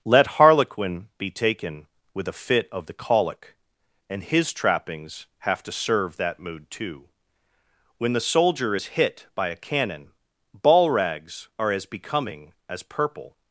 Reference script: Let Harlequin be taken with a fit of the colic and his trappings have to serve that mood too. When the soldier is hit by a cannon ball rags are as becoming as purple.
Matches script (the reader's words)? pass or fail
pass